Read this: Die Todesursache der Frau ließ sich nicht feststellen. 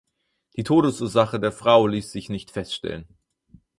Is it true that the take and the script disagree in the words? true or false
false